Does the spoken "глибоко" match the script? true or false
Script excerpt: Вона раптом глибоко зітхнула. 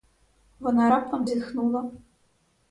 false